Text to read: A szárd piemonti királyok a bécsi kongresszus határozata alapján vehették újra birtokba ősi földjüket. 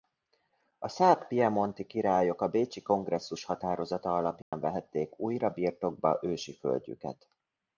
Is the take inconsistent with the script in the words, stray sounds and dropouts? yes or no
yes